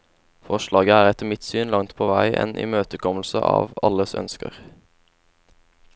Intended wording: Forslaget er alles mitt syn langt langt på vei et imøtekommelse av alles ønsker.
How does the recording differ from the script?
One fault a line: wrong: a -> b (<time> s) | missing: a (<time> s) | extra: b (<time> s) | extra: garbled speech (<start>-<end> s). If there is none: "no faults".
wrong: alles -> etter (1.1 s)
missing: langt (1.9 s)
wrong: et -> en (2.4 s)